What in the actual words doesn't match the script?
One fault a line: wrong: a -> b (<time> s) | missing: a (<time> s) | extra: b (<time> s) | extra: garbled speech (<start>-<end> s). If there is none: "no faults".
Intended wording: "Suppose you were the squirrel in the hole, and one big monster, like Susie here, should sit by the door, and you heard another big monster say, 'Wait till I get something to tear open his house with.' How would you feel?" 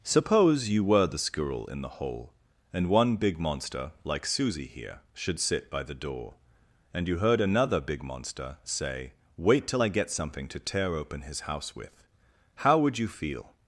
no faults